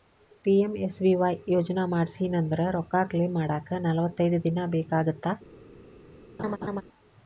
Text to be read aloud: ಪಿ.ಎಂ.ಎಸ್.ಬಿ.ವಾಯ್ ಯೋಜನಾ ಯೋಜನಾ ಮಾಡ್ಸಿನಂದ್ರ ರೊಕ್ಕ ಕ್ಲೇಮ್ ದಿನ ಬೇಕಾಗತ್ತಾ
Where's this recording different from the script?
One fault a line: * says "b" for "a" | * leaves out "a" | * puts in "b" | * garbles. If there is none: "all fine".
* leaves out "ಯೋಜನಾ"
* puts in "ಮಾಡಾಕ ನಲವತ್ತೈದ್"